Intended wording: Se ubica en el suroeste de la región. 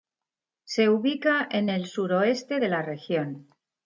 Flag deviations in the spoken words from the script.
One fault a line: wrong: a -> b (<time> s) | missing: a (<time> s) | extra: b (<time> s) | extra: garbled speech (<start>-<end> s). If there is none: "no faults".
no faults